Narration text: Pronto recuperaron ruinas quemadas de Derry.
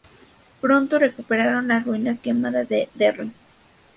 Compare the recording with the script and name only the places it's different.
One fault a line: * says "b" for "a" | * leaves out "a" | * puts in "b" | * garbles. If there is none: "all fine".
* puts in "las"